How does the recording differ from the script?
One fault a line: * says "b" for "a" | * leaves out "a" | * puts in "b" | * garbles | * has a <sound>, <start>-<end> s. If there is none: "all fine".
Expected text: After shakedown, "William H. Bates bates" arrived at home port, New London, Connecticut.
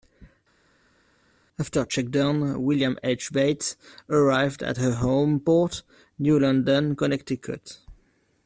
* leaves out "bates"
* puts in "her"